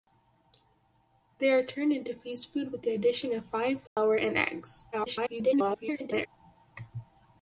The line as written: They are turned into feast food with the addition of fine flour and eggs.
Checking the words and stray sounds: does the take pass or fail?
fail